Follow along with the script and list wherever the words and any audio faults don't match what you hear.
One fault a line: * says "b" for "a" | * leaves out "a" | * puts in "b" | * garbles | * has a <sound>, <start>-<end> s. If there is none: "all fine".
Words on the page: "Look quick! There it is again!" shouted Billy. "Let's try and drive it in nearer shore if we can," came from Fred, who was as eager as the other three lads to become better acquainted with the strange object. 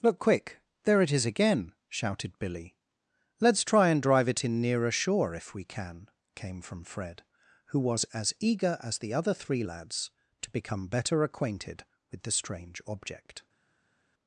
all fine